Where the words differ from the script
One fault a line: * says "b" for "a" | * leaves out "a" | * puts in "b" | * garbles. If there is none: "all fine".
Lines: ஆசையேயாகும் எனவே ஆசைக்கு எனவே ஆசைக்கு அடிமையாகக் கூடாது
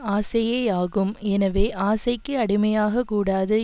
* leaves out "எனவே ஆசைக்கு"